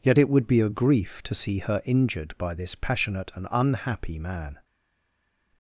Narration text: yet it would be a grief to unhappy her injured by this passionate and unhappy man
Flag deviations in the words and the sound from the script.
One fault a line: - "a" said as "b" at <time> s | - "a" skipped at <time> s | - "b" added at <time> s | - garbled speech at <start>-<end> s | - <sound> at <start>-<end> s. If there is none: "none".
- "unhappy" said as "see" at 1.3 s